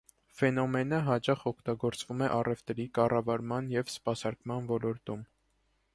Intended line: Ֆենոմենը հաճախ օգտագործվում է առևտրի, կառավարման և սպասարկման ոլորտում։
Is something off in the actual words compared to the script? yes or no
no